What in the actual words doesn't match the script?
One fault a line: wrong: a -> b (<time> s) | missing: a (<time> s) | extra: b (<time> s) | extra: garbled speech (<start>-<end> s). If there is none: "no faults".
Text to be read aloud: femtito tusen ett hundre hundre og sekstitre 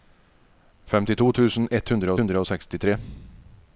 no faults